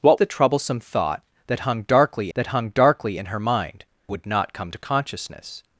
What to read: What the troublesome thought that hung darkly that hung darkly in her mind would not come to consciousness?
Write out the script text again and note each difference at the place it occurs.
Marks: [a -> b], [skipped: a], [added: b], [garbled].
What the troublesome thought that hung darkly that hung darkly in her mind would not come to consciousness?